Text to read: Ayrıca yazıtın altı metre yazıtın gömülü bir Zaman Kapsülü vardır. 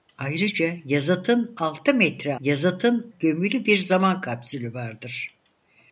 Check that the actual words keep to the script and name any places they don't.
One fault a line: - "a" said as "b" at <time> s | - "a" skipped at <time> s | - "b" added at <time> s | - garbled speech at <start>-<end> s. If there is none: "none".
none